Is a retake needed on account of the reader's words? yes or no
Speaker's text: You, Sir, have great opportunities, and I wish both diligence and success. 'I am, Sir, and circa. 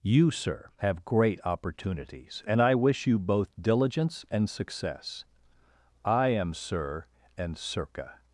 yes